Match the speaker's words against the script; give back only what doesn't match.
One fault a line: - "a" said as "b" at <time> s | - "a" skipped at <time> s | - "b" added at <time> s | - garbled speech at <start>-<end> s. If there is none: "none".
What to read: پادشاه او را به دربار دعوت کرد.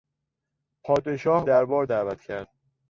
- "او را به" skipped at 1.4 s